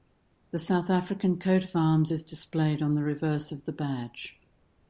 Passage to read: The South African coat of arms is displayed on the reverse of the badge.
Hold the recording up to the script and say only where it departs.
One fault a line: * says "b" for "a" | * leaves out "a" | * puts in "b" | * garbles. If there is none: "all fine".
all fine